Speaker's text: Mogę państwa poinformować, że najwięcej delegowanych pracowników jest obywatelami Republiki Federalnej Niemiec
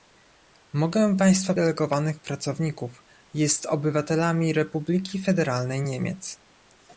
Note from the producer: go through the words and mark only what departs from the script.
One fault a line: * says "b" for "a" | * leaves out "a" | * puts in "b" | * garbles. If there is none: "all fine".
* leaves out "poinformować że najwięcej"